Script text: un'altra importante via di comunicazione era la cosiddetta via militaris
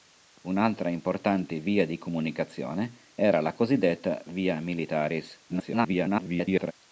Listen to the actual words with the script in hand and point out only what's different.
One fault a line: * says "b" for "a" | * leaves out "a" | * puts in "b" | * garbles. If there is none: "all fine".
* garbles